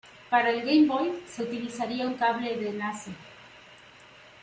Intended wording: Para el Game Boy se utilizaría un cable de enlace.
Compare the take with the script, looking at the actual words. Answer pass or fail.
pass